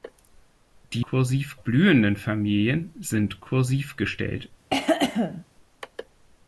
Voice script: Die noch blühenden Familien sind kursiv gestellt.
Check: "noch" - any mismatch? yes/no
yes